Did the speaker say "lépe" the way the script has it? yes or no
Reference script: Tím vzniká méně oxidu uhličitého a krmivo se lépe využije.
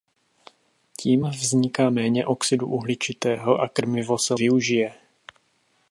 no